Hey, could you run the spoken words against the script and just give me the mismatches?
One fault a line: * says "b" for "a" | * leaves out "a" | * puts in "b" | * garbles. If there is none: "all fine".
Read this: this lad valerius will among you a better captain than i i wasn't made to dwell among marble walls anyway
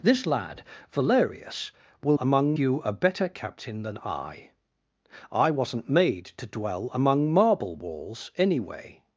all fine